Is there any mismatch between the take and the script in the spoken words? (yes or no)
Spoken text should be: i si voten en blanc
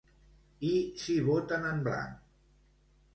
no